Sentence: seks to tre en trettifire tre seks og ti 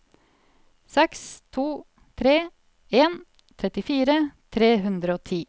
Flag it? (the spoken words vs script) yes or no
yes